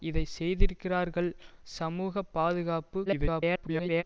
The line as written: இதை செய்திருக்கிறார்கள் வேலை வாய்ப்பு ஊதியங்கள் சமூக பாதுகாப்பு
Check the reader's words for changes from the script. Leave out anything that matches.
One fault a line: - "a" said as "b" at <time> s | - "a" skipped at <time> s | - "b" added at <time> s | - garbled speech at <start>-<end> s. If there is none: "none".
- "வேலை வாய்ப்பு ஊதியங்கள்" skipped at 1.3 s
- garbled speech at 3.1-4.0 s